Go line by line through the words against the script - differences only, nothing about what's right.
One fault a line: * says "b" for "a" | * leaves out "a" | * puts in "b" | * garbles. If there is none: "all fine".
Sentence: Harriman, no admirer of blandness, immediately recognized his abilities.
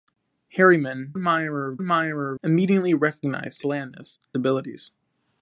* leaves out "no"
* says "admirer" for "blandness"
* says "blandness" for "his"